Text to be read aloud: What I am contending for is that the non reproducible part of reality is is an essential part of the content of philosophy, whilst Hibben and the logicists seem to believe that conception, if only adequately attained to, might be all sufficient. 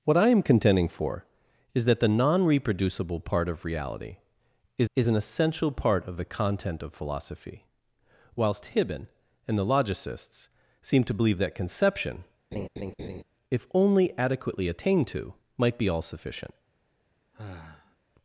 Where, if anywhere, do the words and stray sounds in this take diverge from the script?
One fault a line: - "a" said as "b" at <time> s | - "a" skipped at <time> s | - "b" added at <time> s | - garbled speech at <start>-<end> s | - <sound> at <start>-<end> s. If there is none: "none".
- laugh at 12.5-13.2 s
- sigh at 17.3-18.0 s